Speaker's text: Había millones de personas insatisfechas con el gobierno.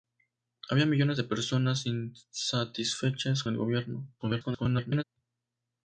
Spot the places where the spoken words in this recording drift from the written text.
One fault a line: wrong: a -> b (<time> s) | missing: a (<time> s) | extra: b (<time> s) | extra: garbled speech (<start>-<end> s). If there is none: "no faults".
missing: con (3.4 s)
extra: garbled speech (4.2-5.0 s)